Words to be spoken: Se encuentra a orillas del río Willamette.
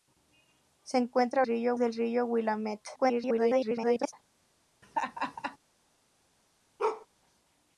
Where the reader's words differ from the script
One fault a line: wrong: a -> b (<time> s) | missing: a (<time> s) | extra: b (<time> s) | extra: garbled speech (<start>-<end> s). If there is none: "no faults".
wrong: orillas -> río (1.4 s)
extra: garbled speech (3.0-4.1 s)